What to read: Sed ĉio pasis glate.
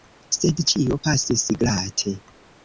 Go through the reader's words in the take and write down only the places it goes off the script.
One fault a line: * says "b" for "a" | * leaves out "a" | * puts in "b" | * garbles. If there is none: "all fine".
all fine